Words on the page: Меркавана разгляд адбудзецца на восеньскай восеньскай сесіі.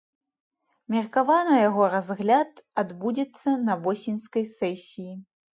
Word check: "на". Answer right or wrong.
right